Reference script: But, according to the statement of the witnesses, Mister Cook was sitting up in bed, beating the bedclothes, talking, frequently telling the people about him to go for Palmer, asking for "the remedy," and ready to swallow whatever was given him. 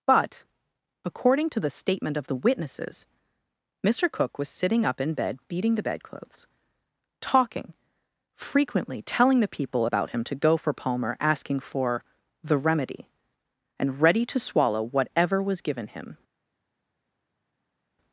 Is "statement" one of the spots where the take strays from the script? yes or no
no